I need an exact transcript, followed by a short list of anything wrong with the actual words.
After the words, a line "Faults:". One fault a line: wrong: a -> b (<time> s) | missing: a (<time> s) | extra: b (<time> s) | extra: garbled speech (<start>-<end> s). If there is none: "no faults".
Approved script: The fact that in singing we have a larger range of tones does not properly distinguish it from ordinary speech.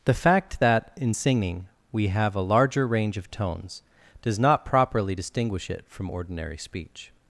The fact that in singing we have a larger range of tones does not properly distinguish it from ordinary speech.
Faults:
no faults